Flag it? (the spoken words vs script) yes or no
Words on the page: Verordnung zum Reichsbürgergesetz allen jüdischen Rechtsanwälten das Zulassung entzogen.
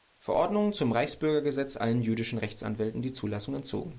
yes